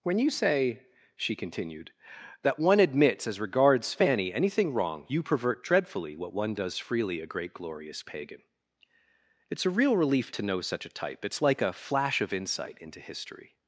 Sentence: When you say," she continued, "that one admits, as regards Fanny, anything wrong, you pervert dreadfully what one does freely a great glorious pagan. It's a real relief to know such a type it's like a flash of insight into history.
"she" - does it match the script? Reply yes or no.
yes